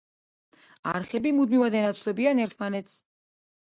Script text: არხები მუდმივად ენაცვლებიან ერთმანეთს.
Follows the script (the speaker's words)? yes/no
yes